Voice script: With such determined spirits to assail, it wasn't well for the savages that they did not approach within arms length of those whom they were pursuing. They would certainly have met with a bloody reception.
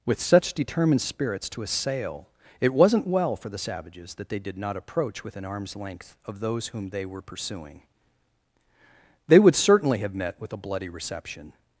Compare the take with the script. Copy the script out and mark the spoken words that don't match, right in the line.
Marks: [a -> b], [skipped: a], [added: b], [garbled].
With such determined spirits to assail, it wasn't well for the savages that they did not approach within arms length of those whom they were pursuing. They would certainly have met with a bloody reception.